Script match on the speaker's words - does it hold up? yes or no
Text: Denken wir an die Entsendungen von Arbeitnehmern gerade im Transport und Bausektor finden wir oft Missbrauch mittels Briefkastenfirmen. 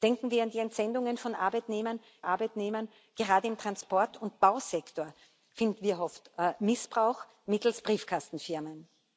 no